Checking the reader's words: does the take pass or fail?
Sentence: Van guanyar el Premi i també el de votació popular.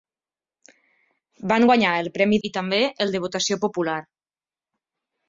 pass